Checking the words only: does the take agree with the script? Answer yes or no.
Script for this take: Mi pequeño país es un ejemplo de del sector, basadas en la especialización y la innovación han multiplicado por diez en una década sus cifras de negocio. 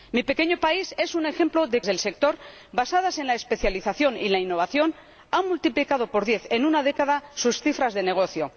yes